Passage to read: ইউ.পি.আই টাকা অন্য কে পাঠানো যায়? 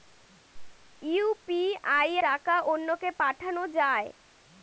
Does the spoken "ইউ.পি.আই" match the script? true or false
true